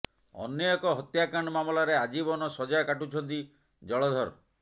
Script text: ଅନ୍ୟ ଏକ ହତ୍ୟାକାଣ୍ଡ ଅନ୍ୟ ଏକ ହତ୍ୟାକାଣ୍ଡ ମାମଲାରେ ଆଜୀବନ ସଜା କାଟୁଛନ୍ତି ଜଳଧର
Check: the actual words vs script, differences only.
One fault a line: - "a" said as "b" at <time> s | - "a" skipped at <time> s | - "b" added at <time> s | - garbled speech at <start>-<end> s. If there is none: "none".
- "ଅନ୍ୟ ଏକ ହତ୍ୟାକାଣ୍ଡ" skipped at 1.5 s